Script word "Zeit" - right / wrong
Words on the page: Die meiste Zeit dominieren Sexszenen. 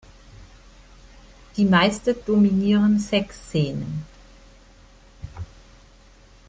wrong